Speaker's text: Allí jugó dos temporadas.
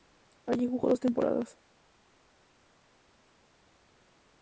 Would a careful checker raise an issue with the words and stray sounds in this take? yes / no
no